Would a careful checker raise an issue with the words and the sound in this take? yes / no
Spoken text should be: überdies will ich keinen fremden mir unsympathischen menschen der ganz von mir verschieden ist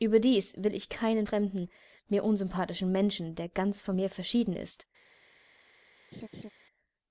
yes